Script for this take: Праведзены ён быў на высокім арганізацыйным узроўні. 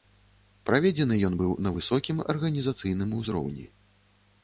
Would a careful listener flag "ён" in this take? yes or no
no